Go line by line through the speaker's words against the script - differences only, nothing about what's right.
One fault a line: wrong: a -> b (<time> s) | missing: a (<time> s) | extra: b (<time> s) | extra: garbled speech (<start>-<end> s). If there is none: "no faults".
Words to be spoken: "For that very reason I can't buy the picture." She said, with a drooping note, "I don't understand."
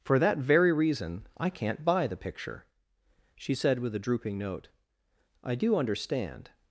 wrong: don't -> do (5.5 s)